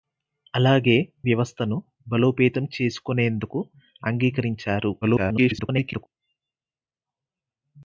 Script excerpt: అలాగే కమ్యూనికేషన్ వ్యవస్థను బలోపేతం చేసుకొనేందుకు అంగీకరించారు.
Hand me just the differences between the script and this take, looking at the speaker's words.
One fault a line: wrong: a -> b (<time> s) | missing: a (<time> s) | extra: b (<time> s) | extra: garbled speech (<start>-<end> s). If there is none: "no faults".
missing: కమ్యూనికేషన్ (0.9 s)
extra: garbled speech (5.0-6.1 s)